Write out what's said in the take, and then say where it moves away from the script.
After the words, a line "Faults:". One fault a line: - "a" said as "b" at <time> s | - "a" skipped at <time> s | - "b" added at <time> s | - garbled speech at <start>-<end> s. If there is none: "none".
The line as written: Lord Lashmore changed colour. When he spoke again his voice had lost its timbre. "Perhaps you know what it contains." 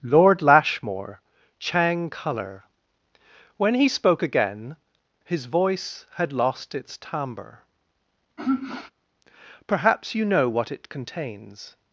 Lord Lashmore chang colour. When he spoke again his voice had lost its timbre. "Perhaps you know what it contains."
Faults:
- "changed" said as "chang" at 1.6 s